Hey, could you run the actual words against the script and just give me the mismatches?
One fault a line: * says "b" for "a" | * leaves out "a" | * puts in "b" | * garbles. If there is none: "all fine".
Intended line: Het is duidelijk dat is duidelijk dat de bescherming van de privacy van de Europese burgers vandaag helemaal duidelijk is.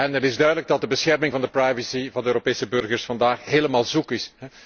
* leaves out "is duidelijk dat"
* says "zoek" for "duidelijk"